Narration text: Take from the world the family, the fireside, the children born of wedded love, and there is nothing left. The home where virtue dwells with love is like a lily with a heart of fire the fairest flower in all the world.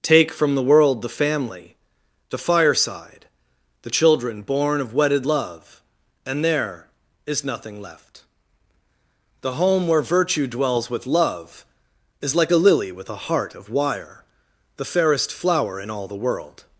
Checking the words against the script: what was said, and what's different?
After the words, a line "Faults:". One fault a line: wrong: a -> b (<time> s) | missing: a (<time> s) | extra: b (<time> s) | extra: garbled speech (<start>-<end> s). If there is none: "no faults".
Take from the world the family, the fireside, the children born of wedded love, and there is nothing left. The home where virtue dwells with love is like a lily with a heart of wire the fairest flower in all the world.
Faults:
wrong: fire -> wire (13.7 s)